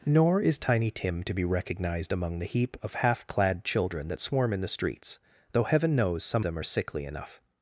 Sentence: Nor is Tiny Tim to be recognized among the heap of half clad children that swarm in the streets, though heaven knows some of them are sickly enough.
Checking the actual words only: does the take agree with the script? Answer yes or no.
no